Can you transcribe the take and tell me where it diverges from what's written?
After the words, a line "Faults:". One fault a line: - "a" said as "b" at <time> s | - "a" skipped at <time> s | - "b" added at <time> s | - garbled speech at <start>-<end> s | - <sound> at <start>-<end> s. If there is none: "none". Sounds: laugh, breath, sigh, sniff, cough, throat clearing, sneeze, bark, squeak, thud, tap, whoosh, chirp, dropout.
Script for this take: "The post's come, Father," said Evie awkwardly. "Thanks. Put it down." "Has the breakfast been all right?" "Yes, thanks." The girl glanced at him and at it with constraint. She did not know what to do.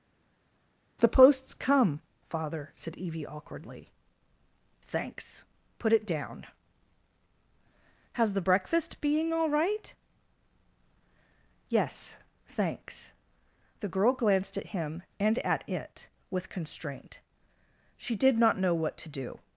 "The post's come, Father," said Evie awkwardly. "Thanks. Put it down." "Has the breakfast being all right?" "Yes, thanks." The girl glanced at him and at it with constraint. She did not know what to do.
Faults:
- "been" said as "being" at 9.0 s